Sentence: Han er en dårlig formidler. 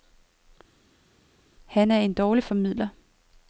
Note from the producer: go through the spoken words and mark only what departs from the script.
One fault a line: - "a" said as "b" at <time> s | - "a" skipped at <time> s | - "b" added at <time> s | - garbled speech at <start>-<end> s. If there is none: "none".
none